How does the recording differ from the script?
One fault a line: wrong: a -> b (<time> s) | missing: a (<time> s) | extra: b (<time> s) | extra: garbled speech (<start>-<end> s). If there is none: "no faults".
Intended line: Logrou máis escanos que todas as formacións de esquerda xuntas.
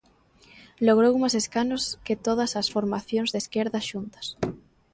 no faults